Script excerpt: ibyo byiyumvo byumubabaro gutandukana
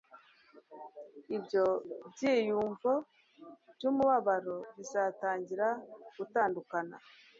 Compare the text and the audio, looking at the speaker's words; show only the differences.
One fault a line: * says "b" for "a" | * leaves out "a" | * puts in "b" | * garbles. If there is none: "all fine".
* puts in "bizatangira"